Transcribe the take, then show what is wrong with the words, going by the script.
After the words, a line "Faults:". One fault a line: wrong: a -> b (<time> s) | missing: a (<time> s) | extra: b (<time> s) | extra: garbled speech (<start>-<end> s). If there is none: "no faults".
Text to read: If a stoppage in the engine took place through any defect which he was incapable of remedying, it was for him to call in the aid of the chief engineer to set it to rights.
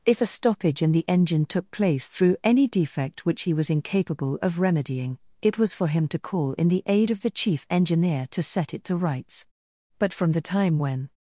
If a stoppage in the engine took place through any defect which he was incapable of remedying, it was for him to call in the aid of the chief engineer to set it to rights. But from the time when
Faults:
extra: But from the time when (10.0 s)